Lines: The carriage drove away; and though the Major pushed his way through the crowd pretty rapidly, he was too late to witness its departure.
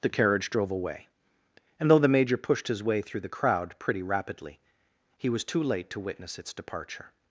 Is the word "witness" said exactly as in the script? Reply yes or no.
yes